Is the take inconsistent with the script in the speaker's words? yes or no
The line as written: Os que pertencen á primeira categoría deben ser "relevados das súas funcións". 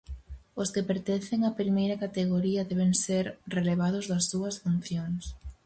no